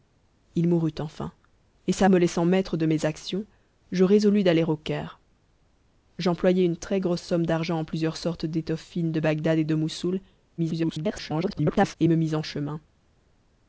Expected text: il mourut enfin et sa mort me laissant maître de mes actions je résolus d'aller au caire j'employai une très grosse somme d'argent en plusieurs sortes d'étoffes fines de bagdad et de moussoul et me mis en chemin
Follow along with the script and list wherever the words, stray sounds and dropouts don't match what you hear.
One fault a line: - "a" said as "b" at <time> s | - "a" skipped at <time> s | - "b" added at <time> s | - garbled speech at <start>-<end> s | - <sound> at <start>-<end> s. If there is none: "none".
- "mort" skipped at 2.1 s
- garbled speech at 10.6-12.0 s